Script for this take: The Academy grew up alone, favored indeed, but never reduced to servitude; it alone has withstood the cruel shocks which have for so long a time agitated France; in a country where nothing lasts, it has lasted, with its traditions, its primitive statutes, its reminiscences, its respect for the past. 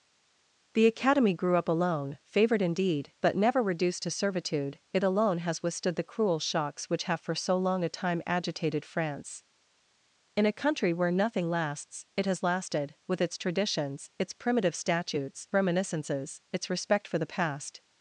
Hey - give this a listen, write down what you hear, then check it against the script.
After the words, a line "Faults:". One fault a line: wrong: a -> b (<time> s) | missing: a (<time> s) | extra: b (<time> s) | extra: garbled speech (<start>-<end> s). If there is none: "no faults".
The Academy grew up alone, favored indeed, but never reduced to servitude; it alone has withstood the cruel shocks which have for so long a time agitated France; in a country where nothing lasts, it has lasted, with its traditions, its primitive statutes, reminiscences, its respect for the past.
Faults:
missing: its (15.5 s)